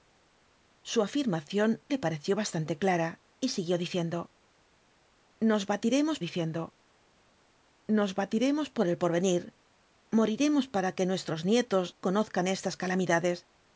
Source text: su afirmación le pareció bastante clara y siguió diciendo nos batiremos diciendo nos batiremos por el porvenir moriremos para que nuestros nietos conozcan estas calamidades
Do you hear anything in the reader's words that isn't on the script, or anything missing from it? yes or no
no